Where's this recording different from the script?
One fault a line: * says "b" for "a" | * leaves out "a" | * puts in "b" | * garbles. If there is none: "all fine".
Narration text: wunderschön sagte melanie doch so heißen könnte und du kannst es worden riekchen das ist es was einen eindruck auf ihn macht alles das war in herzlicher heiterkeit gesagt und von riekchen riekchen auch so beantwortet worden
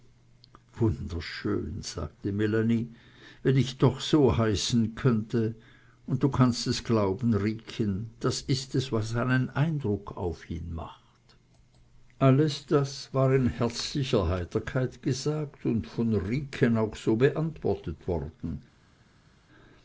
* puts in "wenn ich"
* says "glauben" for "worden"
* leaves out "riekchen"